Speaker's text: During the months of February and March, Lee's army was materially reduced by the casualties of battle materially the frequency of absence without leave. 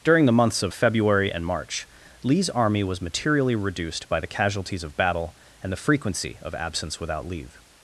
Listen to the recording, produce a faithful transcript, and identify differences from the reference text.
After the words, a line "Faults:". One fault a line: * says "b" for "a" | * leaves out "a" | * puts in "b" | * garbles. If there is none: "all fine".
During the months of February and March, Lee's army was materially reduced by the casualties of battle and the frequency of absence without leave.
Faults:
* says "and" for "materially"